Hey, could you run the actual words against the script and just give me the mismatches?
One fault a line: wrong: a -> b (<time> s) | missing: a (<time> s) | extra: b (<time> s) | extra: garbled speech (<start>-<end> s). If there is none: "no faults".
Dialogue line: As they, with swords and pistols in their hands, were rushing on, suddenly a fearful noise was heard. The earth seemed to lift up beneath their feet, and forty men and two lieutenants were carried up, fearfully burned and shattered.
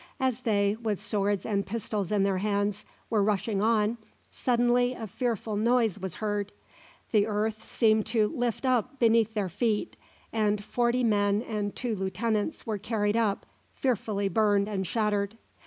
no faults